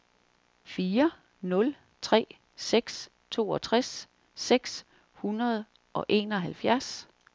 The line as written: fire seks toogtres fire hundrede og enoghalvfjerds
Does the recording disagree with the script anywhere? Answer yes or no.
yes